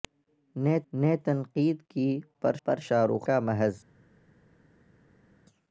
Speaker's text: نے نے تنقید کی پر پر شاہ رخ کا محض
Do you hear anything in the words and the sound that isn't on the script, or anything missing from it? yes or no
no